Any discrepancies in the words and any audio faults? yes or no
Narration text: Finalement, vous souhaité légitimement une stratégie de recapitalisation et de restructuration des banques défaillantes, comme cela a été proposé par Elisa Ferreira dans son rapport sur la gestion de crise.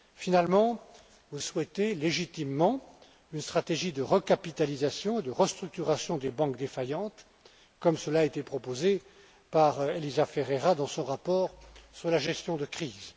no